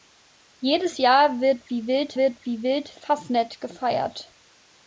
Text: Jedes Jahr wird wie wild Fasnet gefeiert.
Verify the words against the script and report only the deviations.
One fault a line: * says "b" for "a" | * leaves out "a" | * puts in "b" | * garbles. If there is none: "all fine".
* puts in "wird wie wild"